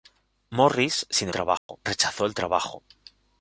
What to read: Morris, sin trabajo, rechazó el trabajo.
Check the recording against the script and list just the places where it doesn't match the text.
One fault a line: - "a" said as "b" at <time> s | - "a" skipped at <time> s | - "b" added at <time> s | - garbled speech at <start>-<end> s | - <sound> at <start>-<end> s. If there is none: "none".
- dropout at 1.6-1.7 s